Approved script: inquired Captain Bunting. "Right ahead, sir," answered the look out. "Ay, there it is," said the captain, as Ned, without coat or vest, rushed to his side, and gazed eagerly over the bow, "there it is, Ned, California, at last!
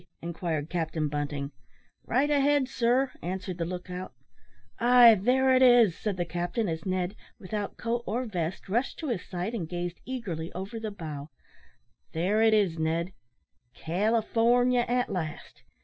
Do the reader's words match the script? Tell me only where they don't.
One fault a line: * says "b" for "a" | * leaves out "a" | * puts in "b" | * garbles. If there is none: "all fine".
all fine